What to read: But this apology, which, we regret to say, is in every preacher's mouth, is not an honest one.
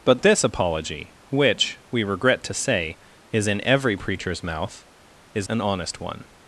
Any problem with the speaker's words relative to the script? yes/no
yes